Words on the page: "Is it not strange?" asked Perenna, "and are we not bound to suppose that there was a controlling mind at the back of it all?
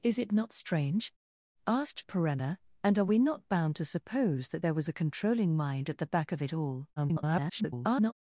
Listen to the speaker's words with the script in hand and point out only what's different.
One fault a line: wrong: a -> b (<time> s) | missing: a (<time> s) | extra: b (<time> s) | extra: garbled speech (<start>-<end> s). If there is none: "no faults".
extra: garbled speech (7.0-8.1 s)